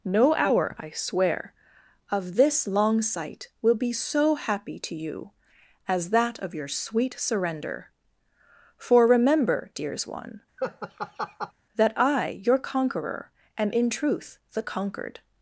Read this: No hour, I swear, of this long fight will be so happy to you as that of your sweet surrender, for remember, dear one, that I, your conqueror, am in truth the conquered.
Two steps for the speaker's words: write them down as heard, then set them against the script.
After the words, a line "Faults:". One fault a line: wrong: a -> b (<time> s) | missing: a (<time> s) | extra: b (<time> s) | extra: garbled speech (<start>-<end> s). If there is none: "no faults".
No hour, I swear, of this long sight will be so happy to you as that of your sweet surrender, for remember, dears one, that I, your conqueror, am in truth the conquered.
Faults:
wrong: fight -> sight (3.0 s)
wrong: dear -> dears (9.7 s)